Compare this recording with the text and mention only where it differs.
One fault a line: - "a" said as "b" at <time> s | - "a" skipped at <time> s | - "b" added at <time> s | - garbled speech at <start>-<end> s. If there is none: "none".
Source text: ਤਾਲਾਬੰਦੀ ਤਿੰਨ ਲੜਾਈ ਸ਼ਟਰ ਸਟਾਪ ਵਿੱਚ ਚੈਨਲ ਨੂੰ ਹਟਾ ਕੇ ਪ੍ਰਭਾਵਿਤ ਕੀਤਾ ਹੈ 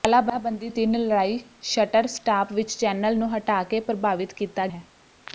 none